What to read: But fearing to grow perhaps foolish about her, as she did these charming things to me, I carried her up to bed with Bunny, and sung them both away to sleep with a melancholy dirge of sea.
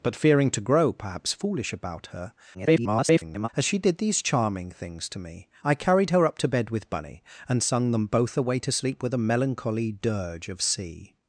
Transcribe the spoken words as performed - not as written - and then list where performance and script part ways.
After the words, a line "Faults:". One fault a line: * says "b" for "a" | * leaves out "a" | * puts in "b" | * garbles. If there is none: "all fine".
But fearing to grow perhaps foolish about her, [garbled] as she did these charming things to me, I carried her up to bed with Bunny, and sung them both away to sleep with a melancholy dirge of sea.
Faults:
* garbles